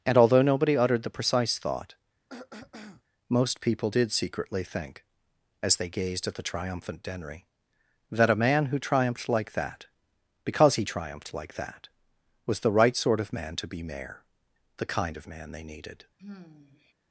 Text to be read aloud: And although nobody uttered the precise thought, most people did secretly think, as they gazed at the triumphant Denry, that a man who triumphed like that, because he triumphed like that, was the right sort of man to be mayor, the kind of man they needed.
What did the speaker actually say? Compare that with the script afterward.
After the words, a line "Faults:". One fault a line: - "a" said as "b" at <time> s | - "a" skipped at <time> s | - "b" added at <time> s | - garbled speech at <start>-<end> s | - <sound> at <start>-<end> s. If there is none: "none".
And although nobody uttered the precise thought, most people did secretly think, as they gazed at the triumphant Denry, that a man who triumphed like that, because he triumphed like that, was the right sort of man to be mayor, the kind of man they needed.
Faults:
- throat clearing at 2.3-3.0 s
- sigh at 16.2-16.9 s